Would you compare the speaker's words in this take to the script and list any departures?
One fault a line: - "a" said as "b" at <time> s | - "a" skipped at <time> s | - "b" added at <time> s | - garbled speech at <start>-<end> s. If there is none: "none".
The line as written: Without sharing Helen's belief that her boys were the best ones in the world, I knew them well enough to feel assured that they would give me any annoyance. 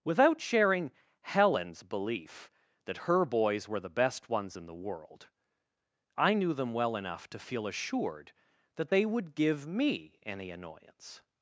none